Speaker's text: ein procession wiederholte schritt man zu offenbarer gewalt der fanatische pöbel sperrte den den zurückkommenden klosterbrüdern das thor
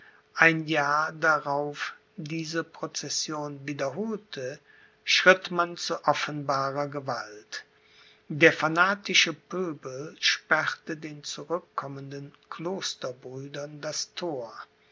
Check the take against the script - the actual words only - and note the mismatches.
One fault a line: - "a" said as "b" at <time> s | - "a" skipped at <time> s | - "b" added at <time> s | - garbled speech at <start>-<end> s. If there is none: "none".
- "jahr darauf diese" added at 0.7 s
- "den" skipped at 11.2 s